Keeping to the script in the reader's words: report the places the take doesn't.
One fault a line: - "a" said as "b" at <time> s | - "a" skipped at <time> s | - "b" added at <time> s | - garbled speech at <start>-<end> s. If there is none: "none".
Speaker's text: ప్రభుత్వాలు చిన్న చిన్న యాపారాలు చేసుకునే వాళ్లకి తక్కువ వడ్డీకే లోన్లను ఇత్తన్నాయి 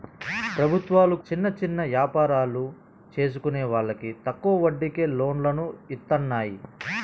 none